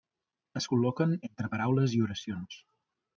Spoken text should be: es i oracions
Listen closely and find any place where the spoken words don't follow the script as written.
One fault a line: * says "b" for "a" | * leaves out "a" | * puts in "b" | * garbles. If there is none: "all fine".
* puts in "col·loquen entre paraules"